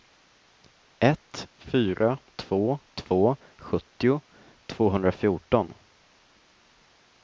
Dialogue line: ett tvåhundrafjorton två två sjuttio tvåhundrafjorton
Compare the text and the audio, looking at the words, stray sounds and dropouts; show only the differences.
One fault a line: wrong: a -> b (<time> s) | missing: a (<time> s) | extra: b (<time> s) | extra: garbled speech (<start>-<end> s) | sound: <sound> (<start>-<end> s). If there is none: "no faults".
wrong: tvåhundrafjorton -> fyra (1.6 s)